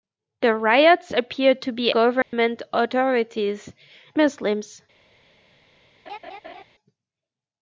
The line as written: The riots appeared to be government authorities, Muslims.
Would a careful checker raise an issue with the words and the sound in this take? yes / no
yes